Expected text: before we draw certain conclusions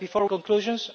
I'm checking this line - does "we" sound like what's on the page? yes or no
no